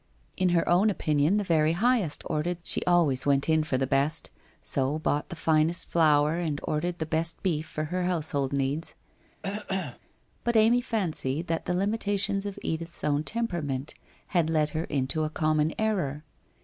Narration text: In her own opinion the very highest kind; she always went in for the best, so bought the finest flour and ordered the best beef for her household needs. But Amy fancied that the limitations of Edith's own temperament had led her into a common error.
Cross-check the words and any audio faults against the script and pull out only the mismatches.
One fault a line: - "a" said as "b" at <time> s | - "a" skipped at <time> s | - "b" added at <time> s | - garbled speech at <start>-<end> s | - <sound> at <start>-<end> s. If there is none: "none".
- "kind" said as "ordered" at 2.3 s
- cough at 9.4-10.0 s